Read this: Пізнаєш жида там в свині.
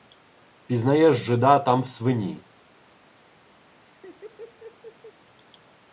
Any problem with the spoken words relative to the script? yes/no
no